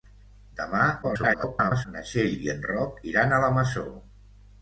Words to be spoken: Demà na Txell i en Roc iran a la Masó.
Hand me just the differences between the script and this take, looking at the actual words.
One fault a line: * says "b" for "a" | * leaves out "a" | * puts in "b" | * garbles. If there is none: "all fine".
* garbles